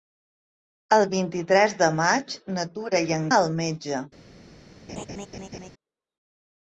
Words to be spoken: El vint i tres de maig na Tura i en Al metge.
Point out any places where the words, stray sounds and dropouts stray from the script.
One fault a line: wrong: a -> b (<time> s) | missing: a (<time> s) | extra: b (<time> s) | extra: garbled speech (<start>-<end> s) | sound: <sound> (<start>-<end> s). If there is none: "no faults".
sound: laugh (4.9-5.7 s)